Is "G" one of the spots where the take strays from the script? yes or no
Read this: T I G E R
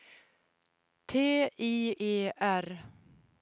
yes